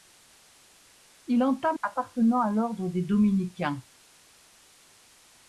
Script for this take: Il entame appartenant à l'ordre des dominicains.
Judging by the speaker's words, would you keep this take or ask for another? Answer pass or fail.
pass